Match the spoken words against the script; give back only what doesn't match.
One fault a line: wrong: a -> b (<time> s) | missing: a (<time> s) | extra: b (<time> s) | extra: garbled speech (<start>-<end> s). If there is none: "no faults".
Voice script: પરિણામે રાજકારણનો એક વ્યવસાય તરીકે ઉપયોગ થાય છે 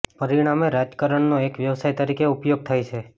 no faults